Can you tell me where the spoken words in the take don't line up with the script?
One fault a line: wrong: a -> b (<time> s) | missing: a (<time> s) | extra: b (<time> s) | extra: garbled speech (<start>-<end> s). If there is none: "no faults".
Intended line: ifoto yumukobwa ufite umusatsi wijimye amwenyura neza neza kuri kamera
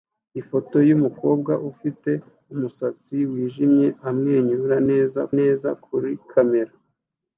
no faults